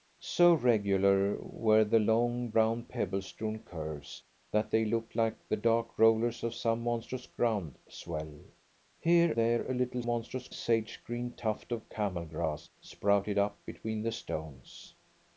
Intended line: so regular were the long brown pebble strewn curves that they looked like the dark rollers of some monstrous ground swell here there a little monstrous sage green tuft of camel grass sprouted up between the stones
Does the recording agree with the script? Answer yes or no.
yes